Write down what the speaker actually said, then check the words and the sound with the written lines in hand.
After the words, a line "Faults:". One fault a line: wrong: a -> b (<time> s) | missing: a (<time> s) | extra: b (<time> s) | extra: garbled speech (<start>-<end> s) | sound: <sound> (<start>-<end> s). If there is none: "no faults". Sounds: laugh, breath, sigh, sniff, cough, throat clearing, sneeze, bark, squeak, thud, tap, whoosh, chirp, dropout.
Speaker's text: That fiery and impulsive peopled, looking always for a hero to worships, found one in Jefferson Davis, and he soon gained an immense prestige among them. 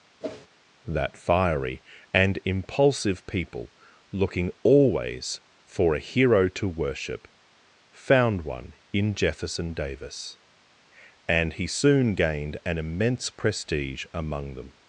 That fiery and impulsive people, looking always for a hero to worship, found one in Jefferson Davis, and he soon gained an immense prestige among them.
Faults:
sound: whoosh (0.2-0.5 s)
wrong: peopled -> people (3.2 s)
wrong: worships -> worship (6.7 s)